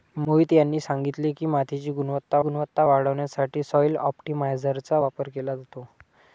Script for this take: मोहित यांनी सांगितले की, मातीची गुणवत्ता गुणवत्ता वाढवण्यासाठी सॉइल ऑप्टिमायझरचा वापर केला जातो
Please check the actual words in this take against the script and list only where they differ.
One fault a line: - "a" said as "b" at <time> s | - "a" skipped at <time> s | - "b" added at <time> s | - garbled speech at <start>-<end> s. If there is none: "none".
none